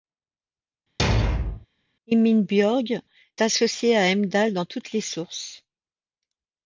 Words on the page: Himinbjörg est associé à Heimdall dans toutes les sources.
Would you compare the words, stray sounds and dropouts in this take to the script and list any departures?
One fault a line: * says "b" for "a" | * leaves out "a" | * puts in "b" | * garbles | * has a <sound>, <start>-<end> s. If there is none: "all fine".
* has a thud, 1.0-1.7 s
* leaves out "est"